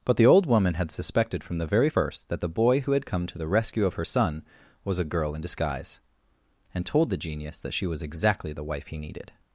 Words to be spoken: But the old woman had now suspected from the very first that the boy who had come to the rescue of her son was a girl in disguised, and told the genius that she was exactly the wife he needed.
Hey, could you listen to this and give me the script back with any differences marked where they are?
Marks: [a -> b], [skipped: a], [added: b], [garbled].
But the old woman had [skipped: now] suspected from the very first that the boy who had come to the rescue of her son was a girl in [disguised, -> disguise] and told the genius that she was exactly the wife he needed.